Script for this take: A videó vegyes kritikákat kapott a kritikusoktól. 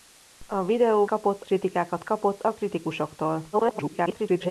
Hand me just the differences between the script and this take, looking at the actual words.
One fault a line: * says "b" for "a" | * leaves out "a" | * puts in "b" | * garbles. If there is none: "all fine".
* says "kapott" for "vegyes"
* garbles